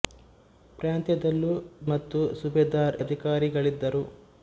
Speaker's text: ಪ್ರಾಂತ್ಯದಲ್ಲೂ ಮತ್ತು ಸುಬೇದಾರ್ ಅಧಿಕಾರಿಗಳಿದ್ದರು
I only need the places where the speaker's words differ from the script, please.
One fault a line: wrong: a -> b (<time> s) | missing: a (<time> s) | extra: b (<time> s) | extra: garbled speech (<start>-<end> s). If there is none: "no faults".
no faults